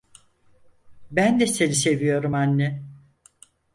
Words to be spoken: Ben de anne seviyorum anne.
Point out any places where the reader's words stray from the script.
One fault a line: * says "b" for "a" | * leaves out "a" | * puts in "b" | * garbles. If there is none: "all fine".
* says "seni" for "anne"